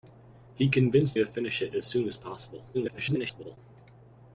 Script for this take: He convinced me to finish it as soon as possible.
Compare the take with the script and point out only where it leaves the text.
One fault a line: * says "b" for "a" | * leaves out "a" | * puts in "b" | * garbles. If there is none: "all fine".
* leaves out "me"
* garbles